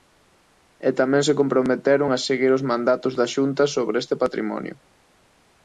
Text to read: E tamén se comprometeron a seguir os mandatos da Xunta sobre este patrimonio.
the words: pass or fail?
pass